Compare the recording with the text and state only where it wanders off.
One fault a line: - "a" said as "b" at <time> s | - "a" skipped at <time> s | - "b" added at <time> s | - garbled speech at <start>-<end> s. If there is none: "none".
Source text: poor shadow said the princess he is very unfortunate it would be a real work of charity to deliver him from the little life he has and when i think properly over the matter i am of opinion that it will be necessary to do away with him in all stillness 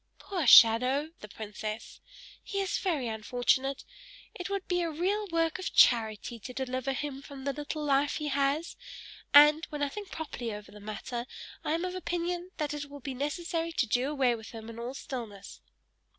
- "said" skipped at 1.1 s